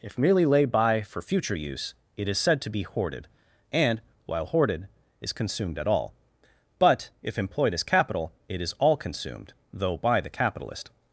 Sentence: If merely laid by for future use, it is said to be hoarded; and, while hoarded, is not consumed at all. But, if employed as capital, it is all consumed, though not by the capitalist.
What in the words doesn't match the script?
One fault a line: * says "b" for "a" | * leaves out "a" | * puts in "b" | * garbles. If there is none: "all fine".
* leaves out "not"
* leaves out "not"